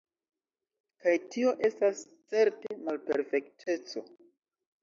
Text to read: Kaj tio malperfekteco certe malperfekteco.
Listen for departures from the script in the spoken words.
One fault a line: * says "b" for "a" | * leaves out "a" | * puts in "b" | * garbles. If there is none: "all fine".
* says "estas" for "malperfekteco"